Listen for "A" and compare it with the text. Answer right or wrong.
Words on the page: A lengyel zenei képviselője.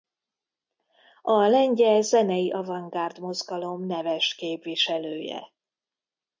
right